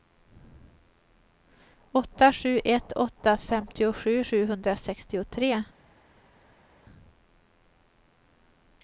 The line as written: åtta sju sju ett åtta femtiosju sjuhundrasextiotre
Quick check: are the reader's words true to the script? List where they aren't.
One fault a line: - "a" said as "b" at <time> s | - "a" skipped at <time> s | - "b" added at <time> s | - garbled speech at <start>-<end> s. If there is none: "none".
- "sju" skipped at 2.6 s